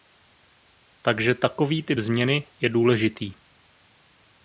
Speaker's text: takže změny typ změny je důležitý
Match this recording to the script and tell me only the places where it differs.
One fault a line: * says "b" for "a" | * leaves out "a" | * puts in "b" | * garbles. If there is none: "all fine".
* says "takový" for "změny"